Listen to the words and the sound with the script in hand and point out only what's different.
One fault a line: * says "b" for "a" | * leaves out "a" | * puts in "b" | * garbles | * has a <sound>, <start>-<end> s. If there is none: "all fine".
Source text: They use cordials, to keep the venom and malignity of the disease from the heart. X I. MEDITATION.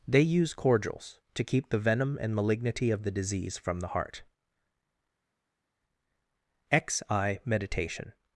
all fine